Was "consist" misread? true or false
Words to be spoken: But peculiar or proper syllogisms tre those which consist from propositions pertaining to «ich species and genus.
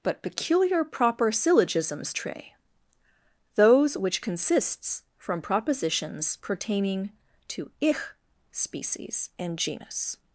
true